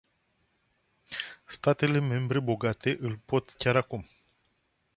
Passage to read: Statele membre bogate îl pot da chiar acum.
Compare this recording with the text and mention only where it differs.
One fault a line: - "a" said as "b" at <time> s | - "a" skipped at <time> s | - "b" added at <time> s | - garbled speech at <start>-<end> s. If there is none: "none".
- "da" skipped at 3.5 s